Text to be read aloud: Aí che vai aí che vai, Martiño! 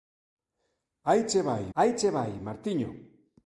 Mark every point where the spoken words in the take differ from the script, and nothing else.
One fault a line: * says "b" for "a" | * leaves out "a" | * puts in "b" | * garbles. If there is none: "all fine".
all fine